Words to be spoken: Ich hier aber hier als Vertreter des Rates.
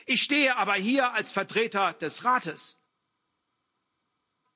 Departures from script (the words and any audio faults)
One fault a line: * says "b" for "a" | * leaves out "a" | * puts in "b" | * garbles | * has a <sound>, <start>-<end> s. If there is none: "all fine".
* says "stehe" for "hier"